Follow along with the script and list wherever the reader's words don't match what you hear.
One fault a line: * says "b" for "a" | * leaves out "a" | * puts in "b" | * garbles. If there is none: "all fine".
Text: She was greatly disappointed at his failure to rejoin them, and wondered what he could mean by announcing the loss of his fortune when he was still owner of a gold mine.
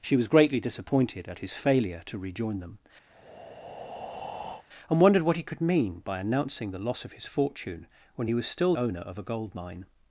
all fine